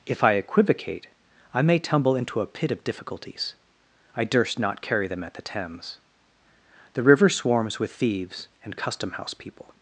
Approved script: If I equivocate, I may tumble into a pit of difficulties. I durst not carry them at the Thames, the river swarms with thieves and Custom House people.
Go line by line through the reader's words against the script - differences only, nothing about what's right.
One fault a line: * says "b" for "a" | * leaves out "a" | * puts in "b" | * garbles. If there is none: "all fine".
all fine